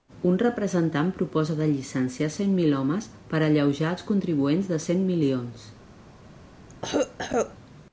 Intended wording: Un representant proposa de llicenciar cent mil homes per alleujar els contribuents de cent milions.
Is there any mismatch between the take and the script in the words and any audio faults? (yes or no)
yes